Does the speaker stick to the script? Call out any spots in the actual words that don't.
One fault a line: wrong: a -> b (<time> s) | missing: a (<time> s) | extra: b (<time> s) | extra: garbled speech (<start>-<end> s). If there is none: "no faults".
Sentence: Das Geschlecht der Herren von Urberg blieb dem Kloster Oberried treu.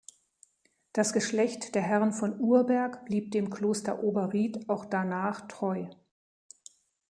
extra: auch danach (4.7 s)